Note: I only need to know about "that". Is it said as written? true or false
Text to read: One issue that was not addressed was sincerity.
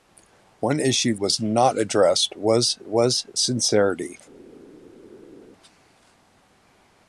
false